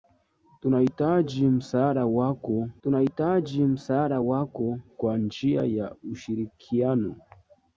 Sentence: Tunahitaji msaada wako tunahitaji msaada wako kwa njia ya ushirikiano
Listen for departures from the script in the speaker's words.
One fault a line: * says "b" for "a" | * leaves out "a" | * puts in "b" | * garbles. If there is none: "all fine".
all fine